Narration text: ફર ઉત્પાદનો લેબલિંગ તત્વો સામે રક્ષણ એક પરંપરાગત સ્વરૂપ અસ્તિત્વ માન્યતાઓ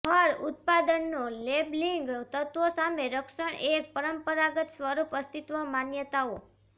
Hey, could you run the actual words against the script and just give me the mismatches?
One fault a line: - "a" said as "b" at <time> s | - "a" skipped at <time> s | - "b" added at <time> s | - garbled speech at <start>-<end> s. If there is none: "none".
none